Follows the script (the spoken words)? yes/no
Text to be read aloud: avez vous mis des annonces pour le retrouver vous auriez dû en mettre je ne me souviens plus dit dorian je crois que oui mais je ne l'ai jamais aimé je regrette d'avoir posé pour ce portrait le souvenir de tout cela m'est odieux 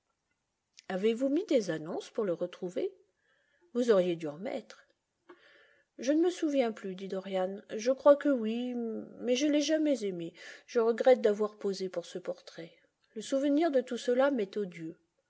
no